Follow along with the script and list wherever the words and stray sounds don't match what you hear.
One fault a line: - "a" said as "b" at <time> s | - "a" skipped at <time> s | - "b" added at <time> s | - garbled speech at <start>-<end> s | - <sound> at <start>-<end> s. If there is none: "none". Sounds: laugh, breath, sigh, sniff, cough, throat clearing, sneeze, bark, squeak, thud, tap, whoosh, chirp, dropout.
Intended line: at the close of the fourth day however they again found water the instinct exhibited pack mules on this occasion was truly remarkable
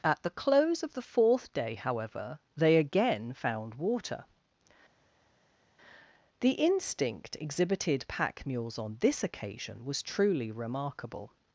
none